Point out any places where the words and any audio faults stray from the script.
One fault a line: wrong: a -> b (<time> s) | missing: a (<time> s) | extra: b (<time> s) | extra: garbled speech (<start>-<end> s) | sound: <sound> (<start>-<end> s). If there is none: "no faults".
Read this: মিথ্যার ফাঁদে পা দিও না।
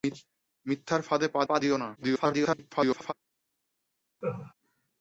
extra: পা (1.4 s)
extra: garbled speech (2.0-3.1 s)
sound: laugh (4.2-4.5 s)